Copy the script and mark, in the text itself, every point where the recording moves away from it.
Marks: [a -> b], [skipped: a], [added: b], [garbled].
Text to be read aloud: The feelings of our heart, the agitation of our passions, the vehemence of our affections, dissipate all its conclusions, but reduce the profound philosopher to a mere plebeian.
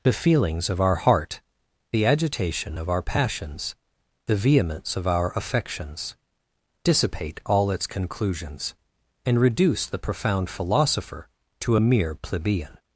The feelings of our heart, the agitation of our passions, the vehemence of our affections, dissipate all its conclusions, [but -> and] reduce the profound philosopher to a mere plebeian.